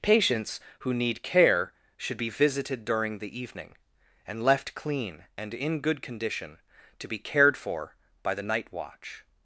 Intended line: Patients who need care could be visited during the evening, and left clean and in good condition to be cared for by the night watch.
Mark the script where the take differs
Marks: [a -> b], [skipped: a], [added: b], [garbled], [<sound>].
Patients who need care [could -> should] be visited during the evening, and left clean and in good condition to be cared for by the night watch.